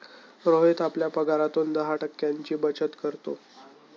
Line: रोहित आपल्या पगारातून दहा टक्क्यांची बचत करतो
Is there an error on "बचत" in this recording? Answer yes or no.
no